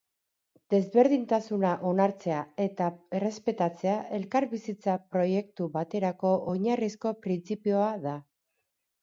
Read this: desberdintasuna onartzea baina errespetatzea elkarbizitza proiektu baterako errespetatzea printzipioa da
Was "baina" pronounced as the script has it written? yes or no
no